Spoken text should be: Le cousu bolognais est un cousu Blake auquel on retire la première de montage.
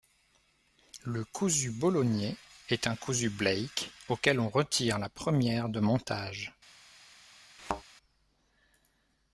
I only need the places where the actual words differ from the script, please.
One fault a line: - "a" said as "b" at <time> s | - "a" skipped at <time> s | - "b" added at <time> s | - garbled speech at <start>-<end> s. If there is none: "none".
none